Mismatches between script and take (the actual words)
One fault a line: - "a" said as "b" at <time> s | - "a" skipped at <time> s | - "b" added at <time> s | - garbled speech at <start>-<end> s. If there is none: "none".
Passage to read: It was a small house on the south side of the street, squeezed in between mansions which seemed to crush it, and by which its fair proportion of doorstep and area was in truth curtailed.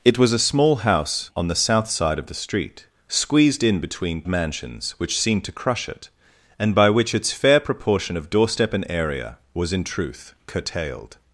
none